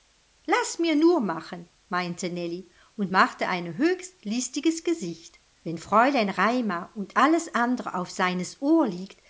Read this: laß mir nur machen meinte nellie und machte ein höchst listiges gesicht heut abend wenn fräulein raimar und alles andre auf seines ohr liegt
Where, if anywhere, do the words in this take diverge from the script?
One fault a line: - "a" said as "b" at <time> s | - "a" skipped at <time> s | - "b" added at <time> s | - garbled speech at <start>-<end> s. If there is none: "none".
- "heut abend" skipped at 5.4 s